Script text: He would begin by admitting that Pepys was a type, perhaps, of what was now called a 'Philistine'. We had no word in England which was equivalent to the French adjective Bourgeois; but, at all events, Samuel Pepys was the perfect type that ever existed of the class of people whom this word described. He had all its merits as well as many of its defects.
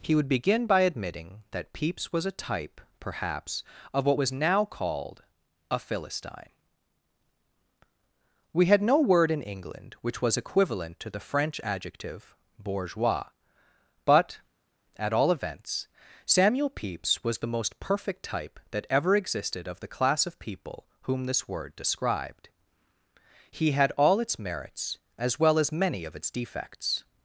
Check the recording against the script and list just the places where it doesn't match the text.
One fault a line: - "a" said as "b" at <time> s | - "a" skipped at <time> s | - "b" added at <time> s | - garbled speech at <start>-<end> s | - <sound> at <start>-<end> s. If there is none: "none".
- "most" added at 17.6 s